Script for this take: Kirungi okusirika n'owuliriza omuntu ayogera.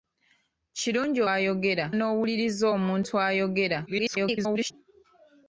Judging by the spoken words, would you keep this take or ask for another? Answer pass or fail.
fail